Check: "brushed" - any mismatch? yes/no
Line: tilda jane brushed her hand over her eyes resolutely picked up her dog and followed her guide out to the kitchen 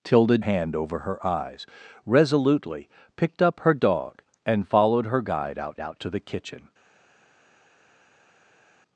yes